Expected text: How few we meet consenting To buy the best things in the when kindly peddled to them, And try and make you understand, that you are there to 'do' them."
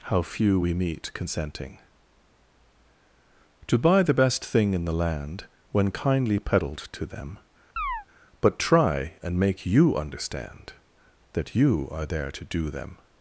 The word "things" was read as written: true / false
false